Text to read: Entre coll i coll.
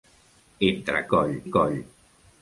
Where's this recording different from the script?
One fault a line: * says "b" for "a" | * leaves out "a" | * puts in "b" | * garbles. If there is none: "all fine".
all fine